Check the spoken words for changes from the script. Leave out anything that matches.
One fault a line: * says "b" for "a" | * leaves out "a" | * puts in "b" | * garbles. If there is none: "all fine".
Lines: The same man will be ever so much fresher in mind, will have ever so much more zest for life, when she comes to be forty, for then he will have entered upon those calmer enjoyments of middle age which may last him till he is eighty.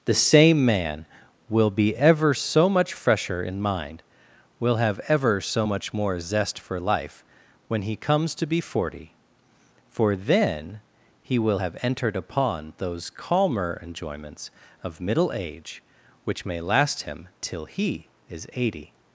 * says "he" for "she"